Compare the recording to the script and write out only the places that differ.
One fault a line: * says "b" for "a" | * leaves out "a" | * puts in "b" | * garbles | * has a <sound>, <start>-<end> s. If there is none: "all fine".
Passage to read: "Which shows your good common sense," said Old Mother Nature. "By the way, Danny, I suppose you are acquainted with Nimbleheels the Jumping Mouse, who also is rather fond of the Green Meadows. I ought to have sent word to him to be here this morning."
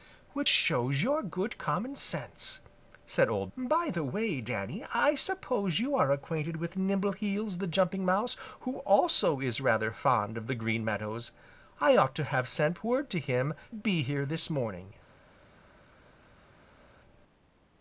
* leaves out "Mother Nature"
* leaves out "to"